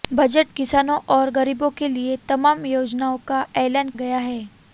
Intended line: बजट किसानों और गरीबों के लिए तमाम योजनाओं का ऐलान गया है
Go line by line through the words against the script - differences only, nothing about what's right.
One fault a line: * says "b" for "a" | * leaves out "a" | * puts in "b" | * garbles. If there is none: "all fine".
all fine